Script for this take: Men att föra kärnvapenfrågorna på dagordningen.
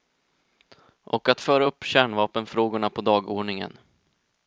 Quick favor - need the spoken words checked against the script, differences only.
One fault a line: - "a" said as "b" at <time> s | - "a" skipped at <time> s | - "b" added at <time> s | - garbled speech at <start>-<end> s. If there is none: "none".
- "Men" said as "Och" at 1.0 s
- "upp" added at 1.6 s